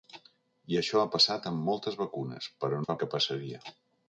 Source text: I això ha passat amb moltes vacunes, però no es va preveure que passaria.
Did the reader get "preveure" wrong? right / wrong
wrong